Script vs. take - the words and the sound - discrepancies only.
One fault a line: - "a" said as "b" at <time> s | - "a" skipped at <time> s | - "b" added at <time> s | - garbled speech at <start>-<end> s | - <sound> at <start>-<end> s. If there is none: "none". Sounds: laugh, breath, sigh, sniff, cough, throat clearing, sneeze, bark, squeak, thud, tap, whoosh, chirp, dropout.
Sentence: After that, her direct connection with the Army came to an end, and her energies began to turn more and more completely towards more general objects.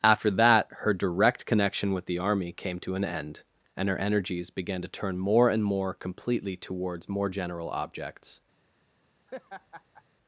- laugh at 9.3-10.0 s